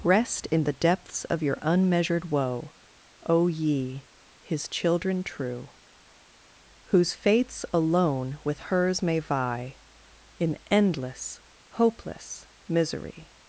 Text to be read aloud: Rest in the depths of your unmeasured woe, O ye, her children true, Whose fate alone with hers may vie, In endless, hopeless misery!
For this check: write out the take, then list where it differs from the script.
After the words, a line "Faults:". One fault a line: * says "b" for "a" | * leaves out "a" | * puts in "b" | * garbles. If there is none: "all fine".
Rest in the depths of your unmeasured woe, O ye, his children true, Whose fates alone with hers may vie, In endless, hopeless misery!
Faults:
* says "his" for "her"
* says "fates" for "fate"